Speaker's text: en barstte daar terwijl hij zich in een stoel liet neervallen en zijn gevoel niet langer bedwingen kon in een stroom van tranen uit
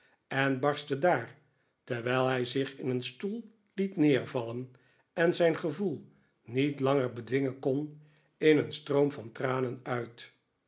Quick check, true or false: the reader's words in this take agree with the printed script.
true